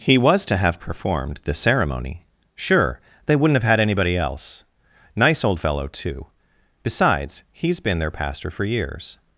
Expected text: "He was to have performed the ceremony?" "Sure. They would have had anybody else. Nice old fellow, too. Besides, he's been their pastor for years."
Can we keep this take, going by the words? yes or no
no